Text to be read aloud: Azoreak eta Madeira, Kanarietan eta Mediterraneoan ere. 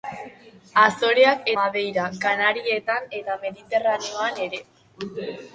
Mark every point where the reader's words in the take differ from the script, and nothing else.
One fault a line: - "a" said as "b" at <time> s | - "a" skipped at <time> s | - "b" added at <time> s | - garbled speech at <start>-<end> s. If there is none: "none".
- "eta" skipped at 1.5 s